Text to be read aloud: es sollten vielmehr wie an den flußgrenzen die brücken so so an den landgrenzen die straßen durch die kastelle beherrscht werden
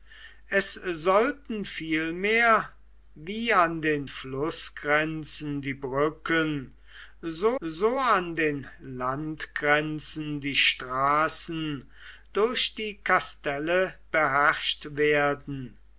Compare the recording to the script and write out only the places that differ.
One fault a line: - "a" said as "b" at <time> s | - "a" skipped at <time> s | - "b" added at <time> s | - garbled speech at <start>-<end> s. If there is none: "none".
none